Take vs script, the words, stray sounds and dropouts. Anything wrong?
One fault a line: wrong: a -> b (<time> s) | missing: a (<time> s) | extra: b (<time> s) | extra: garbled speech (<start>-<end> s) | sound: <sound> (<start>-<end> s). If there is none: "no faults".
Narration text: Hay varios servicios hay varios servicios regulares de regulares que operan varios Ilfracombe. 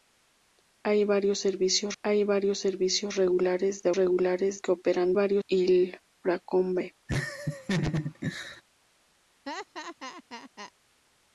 sound: laugh (7.1-8.6 s)
sound: laugh (9.5-10.7 s)